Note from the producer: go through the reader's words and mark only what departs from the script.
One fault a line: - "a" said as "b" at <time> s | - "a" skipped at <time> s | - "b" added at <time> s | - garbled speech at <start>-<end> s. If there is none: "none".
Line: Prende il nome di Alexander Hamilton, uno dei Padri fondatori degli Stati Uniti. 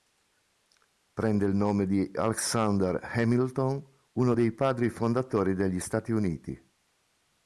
none